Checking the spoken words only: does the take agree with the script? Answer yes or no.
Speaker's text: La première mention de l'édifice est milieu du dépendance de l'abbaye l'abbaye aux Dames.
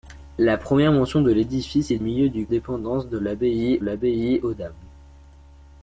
yes